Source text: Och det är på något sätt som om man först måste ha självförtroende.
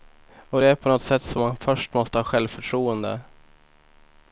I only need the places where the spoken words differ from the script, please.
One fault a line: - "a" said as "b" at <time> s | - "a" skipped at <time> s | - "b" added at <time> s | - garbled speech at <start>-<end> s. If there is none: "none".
- "om" skipped at 1.4 s